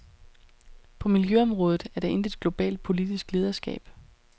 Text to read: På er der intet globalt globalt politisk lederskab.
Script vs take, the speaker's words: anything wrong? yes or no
yes